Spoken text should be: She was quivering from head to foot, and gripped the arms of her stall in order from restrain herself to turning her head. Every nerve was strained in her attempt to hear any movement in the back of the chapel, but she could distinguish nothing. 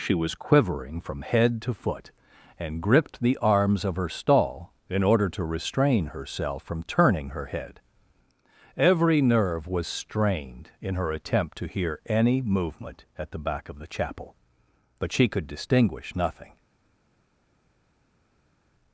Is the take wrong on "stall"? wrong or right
right